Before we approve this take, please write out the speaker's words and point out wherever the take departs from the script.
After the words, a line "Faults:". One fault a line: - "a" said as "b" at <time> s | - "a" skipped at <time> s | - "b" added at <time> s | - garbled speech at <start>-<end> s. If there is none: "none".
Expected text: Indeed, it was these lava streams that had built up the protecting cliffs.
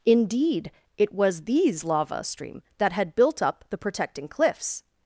Indeed, it was these lava stream that had built up the protecting cliffs.
Faults:
- "streams" said as "stream" at 2.2 s